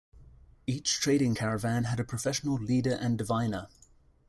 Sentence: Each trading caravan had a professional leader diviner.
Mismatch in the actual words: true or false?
true